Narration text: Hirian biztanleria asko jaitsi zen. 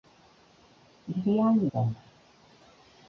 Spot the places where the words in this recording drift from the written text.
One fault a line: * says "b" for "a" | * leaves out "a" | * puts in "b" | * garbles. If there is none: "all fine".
* leaves out "biztanleria asko jaitsi"